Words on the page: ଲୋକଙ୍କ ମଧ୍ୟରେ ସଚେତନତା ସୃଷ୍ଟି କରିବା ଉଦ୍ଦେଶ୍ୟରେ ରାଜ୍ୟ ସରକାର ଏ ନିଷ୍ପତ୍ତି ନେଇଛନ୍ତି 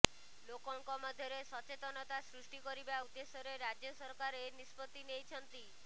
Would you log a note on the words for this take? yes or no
no